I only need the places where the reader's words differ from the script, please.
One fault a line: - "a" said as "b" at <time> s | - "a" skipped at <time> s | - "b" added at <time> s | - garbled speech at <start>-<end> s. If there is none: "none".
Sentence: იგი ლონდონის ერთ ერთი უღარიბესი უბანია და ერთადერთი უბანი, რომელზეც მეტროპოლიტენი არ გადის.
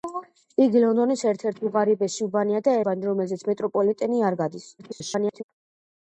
- "ერთადერთი" skipped at 2.8 s
- garbled speech at 4.8-5.4 s